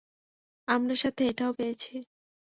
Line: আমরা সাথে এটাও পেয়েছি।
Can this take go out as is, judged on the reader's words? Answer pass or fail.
pass